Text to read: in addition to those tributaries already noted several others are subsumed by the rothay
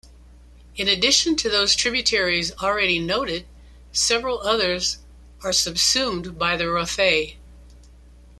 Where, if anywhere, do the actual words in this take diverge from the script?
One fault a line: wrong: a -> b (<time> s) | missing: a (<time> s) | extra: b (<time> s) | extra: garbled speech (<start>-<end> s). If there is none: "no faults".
no faults